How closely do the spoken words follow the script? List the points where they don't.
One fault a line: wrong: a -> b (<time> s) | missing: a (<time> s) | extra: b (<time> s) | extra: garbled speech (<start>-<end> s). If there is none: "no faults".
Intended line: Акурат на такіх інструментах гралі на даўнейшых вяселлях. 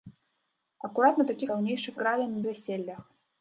wrong: інструментах -> даўнейшых (1.5 s)
missing: даўнейшых (2.4 s)